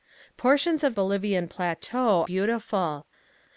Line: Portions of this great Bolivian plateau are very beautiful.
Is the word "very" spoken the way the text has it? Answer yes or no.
no